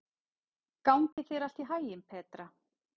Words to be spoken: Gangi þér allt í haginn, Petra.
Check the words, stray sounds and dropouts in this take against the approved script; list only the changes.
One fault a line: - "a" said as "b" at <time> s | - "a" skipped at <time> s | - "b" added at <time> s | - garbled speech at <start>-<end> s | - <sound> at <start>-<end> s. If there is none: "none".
- dropout at 1.1-1.2 s